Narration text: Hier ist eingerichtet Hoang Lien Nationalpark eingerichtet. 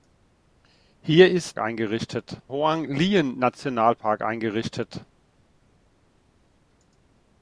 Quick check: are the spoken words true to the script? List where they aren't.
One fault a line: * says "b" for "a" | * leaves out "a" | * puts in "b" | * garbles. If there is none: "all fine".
all fine